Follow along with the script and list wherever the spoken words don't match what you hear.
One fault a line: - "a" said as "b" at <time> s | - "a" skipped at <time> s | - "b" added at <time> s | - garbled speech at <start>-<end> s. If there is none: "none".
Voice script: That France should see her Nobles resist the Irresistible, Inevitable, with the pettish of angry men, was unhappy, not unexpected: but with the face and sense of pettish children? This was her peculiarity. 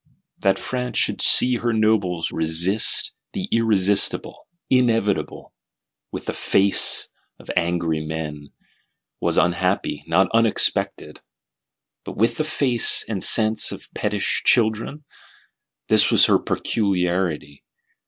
- "pettish" said as "face" at 6.3 s